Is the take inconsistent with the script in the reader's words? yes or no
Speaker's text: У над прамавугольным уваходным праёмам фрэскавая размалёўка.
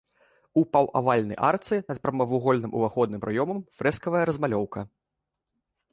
yes